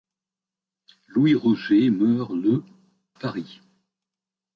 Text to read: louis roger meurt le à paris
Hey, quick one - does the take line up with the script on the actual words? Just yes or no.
no